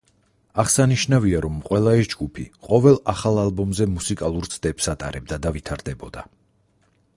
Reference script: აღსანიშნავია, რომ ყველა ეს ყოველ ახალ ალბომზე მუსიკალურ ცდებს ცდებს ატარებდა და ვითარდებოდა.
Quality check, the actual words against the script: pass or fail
fail